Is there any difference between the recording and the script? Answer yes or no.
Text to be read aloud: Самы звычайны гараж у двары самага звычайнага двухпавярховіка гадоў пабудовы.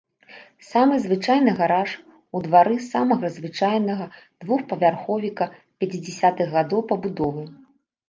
yes